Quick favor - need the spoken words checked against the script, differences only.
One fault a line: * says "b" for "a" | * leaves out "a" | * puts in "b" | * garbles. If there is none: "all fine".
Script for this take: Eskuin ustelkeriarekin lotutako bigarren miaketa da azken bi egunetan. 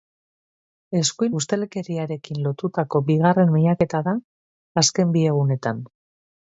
all fine